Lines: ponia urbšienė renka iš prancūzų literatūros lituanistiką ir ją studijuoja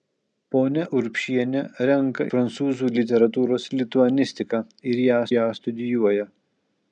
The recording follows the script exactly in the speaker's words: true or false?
false